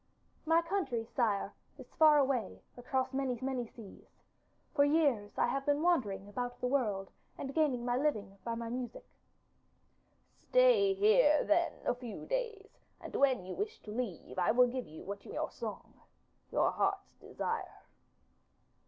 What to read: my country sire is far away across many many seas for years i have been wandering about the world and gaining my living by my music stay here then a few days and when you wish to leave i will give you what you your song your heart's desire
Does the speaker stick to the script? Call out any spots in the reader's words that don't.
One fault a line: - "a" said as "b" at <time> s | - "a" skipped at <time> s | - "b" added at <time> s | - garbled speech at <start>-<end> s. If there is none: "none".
none